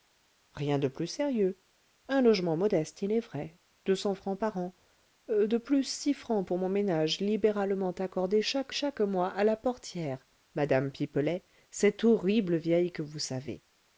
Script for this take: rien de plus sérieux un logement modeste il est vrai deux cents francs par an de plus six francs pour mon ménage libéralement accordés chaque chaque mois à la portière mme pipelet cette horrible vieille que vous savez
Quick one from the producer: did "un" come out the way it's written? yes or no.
yes